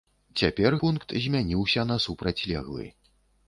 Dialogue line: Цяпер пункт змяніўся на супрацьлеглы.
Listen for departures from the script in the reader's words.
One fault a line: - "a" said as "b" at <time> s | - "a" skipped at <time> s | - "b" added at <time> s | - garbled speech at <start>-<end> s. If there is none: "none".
none